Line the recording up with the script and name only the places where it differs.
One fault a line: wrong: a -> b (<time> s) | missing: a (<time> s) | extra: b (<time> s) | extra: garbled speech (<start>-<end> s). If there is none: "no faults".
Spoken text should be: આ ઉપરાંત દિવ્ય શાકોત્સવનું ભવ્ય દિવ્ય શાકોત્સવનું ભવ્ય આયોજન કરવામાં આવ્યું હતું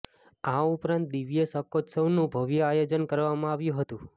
missing: દિવ્ય શાકોત્સવનું ભવ્ય (2.7 s)